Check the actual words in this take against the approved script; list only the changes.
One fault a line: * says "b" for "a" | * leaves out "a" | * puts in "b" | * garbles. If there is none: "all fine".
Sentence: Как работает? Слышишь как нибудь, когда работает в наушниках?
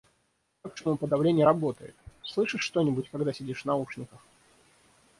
* puts in "шумоподавление"
* says "что" for "как"
* says "сидишь" for "работает"